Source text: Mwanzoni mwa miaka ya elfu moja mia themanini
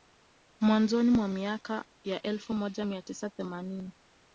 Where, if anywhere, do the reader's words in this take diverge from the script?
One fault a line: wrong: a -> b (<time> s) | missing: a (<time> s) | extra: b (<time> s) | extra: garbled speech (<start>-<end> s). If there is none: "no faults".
extra: tisa (3.0 s)